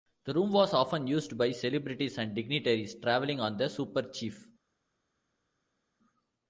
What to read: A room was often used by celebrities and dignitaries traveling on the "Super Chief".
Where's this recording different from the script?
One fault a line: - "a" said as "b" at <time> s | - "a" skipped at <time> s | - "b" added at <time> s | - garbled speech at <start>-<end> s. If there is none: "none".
- "A" said as "The" at 0.2 s